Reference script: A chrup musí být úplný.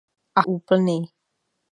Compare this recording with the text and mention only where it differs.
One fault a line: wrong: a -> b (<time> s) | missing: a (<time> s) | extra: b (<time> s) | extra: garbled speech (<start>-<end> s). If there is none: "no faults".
missing: chrup musí být (0.4 s)